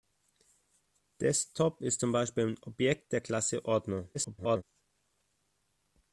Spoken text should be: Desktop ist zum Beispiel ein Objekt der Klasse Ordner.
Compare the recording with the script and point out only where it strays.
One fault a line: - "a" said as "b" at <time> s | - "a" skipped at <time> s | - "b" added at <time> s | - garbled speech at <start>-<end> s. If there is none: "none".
- garbled speech at 4.1-4.6 s